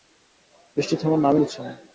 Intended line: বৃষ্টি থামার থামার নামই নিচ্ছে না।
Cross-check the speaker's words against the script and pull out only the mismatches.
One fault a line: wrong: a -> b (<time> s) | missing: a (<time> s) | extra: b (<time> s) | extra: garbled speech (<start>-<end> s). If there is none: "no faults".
missing: থামার (1.2 s)